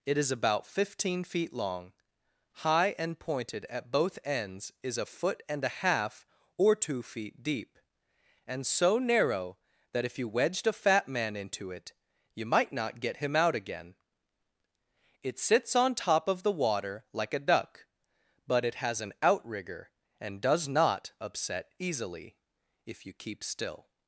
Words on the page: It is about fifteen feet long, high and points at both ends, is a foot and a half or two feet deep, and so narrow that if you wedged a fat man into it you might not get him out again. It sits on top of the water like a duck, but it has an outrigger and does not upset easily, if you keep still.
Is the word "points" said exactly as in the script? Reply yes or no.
no